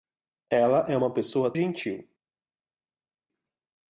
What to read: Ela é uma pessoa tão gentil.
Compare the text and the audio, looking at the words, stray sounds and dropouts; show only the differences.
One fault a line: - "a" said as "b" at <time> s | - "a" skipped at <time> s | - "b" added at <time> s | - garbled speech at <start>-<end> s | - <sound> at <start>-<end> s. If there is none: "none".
- "tão" skipped at 1.5 s